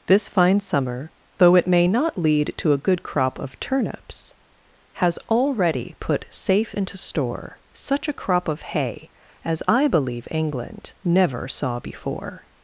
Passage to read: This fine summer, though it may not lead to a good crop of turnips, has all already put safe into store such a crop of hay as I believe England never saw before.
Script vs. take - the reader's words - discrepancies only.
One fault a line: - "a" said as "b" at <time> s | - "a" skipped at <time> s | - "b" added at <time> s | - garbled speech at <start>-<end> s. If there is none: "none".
- "all" skipped at 5.2 s